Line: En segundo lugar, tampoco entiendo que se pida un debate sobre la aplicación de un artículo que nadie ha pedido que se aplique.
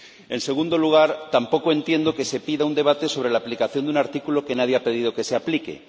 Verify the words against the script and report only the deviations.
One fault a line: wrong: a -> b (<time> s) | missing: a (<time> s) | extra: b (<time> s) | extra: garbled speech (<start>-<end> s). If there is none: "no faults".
no faults